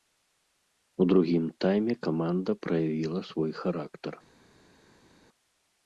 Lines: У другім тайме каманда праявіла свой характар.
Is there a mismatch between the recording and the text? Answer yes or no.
no